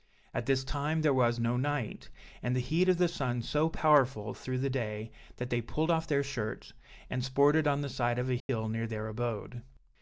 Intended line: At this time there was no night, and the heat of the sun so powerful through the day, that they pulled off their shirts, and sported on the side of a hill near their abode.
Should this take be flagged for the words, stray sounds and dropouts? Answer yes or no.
yes